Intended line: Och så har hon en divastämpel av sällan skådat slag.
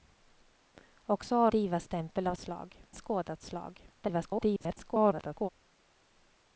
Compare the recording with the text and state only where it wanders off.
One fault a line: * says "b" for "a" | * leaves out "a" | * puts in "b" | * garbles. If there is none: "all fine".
* leaves out "hon en"
* says "slag" for "sällan"
* garbles